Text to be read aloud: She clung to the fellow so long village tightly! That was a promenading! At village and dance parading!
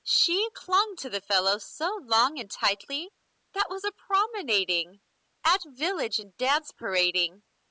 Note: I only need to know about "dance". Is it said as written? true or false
true